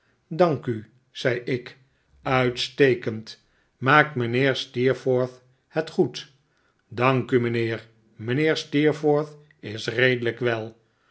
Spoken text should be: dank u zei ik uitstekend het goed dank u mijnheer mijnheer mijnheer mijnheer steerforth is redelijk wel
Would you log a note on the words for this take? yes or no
yes